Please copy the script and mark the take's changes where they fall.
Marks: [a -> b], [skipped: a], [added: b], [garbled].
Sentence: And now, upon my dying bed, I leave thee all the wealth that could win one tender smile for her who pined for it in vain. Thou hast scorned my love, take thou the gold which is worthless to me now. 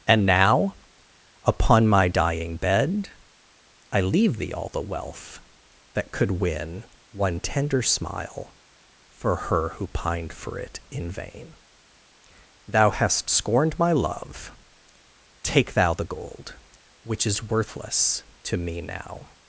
And now, upon my dying bed, I leave thee all the wealth that could win one tender smile for her who pined for it in vain. Thou hast scorned my love, take thou the gold which is worthless to me now.